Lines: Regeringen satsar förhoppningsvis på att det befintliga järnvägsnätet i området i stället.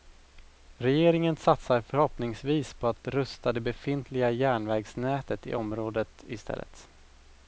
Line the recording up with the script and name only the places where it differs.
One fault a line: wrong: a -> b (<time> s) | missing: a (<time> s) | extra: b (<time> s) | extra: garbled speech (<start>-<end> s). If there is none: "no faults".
extra: rusta (3.1 s)